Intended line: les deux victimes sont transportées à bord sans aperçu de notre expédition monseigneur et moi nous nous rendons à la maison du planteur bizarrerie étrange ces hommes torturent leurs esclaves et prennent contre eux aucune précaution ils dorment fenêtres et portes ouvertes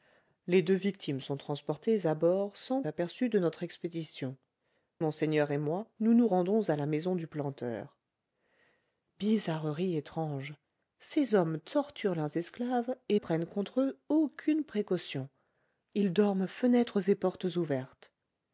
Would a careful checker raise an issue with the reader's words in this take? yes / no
no